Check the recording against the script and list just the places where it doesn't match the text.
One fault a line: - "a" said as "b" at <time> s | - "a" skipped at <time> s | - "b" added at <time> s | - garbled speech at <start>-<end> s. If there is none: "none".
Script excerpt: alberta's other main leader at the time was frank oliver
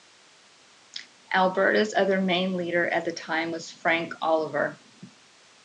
none